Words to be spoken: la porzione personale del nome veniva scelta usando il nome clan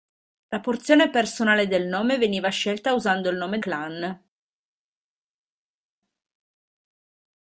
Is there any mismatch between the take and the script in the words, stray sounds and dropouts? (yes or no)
no